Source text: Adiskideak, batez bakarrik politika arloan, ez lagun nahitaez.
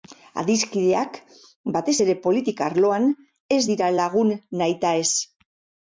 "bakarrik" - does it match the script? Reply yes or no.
no